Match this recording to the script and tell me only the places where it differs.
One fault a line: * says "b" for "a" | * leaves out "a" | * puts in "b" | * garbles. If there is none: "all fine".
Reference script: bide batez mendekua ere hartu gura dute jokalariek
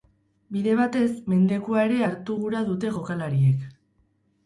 all fine